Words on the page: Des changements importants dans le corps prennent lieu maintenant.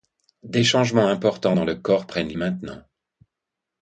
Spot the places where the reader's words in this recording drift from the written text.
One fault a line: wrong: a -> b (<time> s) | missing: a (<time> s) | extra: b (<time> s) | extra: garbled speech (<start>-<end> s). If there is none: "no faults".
missing: lieu (2.3 s)